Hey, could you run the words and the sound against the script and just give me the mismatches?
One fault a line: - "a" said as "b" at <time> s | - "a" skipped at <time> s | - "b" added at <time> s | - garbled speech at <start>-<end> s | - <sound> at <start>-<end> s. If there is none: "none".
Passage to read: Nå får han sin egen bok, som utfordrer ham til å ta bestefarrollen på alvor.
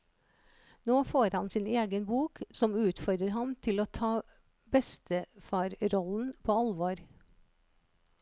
none